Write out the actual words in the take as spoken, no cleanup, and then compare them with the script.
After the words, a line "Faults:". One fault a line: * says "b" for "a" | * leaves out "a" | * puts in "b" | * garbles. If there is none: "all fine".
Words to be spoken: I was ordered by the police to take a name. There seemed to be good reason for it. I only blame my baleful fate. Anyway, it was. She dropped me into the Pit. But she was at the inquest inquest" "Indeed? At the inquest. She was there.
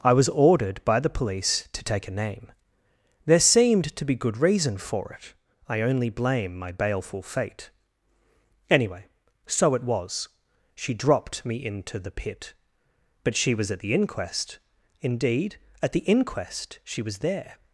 I was ordered by the police to take a name. There seemed to be good reason for it. I only blame my baleful fate. Anyway, so it was. She dropped me into the Pit. But she was at the inquest" "Indeed? At the inquest. She was there.
Faults:
* puts in "so"
* leaves out "inquest"